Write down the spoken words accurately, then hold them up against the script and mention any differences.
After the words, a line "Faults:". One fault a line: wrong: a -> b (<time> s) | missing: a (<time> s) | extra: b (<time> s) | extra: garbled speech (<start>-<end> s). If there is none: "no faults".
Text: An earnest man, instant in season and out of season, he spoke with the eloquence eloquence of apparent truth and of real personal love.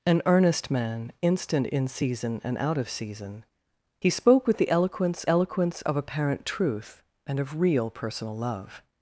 An earnest man, instant in season and out of season, he spoke with the eloquence eloquence of apparent truth and of real personal love.
Faults:
no faults